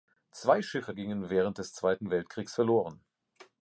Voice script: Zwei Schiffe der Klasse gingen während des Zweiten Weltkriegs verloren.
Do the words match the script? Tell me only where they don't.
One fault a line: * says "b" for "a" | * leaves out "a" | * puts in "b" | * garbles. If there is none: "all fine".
* leaves out "der Klasse"